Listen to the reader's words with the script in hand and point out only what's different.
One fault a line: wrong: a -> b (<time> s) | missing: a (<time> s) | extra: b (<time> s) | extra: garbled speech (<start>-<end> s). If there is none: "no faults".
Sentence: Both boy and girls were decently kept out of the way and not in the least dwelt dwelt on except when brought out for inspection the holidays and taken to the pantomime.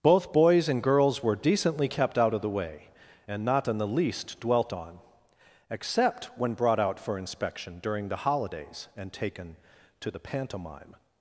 wrong: boy -> boys (0.3 s)
missing: dwelt (4.7 s)
extra: during (7.8 s)